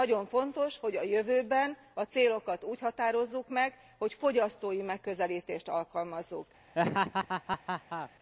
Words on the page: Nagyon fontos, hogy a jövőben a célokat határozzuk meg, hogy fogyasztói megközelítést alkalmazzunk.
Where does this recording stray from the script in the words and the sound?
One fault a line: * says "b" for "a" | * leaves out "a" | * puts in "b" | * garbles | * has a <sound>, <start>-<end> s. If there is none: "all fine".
* puts in "úgy"
* has a laugh, 6.8-8.1 s